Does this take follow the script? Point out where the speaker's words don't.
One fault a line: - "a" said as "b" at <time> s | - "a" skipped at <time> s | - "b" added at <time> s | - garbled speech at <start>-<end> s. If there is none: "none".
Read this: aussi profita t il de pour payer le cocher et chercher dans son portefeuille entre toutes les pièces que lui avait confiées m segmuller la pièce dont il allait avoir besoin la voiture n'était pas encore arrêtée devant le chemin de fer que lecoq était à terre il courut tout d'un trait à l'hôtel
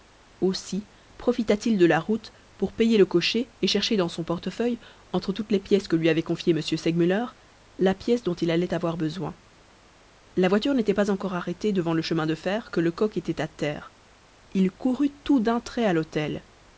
- "la route" added at 1.9 s